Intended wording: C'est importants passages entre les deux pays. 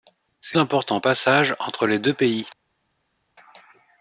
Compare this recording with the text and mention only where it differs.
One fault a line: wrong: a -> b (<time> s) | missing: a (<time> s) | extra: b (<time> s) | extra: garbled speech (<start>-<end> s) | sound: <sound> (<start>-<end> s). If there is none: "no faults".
no faults